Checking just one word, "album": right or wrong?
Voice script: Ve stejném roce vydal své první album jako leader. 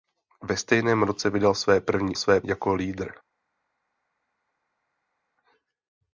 wrong